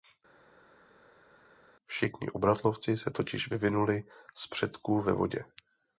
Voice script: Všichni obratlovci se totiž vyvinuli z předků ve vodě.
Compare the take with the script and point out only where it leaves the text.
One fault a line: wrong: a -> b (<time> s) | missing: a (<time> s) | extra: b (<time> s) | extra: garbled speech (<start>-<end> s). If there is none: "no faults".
no faults